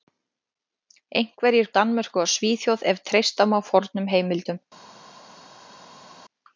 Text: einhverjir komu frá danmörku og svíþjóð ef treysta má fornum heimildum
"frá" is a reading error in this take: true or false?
true